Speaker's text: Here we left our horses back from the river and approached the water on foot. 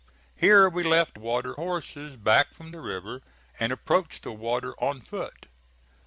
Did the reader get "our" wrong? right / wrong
wrong